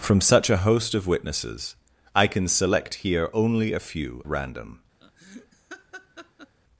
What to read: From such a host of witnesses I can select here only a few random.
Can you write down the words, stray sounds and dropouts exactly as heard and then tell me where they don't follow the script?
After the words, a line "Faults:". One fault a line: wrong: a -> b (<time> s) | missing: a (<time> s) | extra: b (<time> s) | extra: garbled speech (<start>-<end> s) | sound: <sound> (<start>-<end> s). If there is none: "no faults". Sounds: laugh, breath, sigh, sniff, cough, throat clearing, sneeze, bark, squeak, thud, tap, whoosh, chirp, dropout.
From such a host of witnesses I can select here only a few random.
Faults:
sound: laugh (5.0-6.6 s)